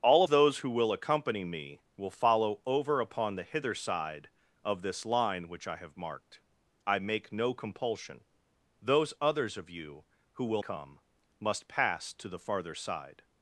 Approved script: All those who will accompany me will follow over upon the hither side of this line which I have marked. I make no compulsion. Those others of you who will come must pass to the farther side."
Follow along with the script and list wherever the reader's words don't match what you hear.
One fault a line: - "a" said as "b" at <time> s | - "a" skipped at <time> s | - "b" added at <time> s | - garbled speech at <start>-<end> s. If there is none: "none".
none